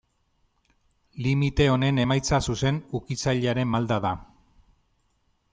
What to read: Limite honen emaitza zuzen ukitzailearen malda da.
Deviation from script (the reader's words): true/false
false